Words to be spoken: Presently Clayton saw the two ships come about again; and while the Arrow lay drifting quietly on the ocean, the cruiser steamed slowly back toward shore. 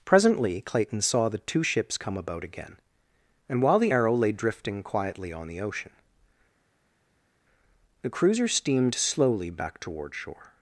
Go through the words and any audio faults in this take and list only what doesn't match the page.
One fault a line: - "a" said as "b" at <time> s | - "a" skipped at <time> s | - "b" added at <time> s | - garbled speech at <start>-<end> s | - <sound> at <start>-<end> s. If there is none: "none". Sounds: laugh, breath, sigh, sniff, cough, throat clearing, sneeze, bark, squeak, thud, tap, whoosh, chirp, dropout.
none